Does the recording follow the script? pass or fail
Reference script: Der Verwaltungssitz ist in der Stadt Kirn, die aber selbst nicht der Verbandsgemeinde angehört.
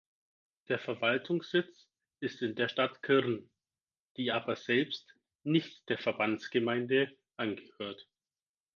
pass